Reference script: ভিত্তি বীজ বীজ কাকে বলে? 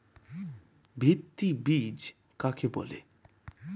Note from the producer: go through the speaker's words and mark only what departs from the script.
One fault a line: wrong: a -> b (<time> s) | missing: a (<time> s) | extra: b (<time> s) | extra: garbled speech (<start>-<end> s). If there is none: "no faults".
missing: বীজ (2.0 s)